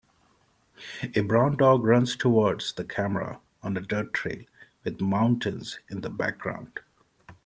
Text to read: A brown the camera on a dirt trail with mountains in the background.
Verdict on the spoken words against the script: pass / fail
fail